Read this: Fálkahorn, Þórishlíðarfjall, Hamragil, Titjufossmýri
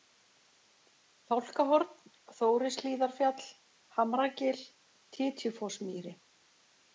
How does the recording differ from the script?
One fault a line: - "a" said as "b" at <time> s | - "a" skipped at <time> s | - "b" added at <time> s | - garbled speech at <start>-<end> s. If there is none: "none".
none